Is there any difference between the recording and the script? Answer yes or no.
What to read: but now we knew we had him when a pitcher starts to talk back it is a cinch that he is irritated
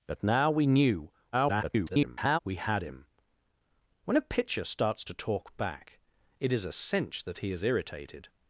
yes